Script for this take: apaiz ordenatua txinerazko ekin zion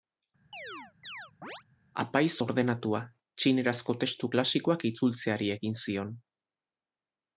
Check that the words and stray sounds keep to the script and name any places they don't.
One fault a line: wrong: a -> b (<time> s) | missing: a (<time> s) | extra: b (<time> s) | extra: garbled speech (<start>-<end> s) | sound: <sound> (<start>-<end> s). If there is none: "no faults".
sound: chirp (0.5-1.6 s)
extra: testu klasikoak itzultzeari (4.0 s)